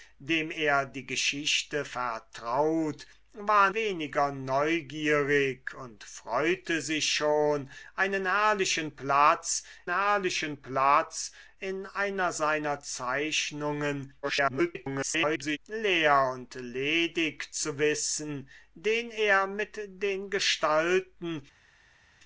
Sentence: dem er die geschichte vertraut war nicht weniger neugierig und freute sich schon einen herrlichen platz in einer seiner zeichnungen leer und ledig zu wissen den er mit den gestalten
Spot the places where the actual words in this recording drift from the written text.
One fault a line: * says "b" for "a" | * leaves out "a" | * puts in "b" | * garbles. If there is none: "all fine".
* leaves out "nicht"
* puts in "herrlichen platz"
* garbles